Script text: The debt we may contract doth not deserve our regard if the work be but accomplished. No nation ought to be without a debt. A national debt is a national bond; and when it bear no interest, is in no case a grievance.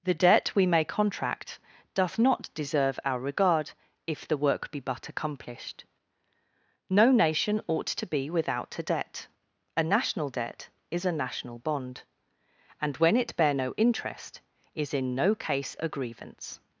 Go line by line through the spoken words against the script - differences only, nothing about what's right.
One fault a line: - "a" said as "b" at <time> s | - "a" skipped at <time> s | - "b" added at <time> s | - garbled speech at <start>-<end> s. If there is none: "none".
none